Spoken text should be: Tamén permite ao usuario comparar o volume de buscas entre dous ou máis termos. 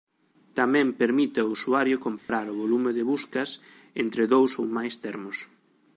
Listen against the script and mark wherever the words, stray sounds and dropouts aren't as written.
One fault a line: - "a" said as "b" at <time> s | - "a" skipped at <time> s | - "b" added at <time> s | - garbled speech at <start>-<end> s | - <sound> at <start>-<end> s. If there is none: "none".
- dropout at 2.2-2.3 s